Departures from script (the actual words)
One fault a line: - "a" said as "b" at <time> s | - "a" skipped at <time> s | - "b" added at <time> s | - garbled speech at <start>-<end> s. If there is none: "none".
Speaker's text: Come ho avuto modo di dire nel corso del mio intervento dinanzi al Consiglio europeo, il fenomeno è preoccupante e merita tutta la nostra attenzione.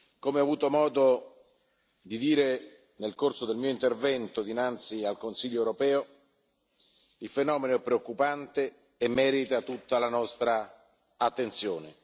none